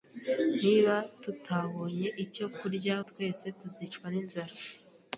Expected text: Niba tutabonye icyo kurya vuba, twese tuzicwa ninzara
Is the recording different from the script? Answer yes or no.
yes